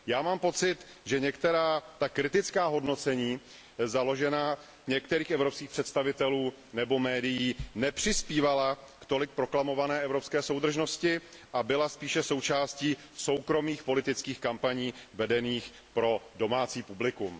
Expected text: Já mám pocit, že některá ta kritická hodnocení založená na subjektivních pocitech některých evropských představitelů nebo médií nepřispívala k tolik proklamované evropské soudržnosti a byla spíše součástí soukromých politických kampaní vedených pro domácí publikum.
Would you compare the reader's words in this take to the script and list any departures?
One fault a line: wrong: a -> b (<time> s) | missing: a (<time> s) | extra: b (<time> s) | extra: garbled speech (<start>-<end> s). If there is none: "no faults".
missing: na subjektivních pocitech (4.6 s)